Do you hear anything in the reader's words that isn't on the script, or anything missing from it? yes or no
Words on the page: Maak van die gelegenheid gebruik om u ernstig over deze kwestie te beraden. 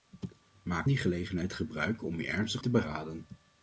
yes